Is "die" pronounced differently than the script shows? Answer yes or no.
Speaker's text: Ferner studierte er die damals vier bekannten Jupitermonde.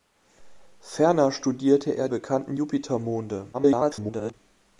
yes